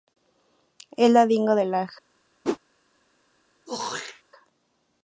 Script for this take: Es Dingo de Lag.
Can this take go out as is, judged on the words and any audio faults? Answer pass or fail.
fail